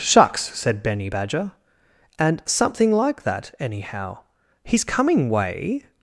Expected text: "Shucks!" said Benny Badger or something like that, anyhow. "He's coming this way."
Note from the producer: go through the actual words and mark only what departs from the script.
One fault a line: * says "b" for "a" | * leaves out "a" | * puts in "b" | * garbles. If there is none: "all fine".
* says "and" for "or"
* leaves out "this"